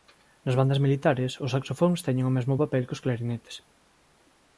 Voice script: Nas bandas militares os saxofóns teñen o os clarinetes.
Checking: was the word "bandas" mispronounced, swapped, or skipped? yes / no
no